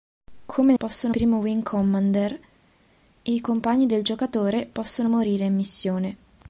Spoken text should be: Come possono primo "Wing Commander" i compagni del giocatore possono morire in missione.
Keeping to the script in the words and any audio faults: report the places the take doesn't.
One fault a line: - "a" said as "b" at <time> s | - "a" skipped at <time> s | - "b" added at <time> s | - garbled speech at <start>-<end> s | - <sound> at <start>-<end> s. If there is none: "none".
none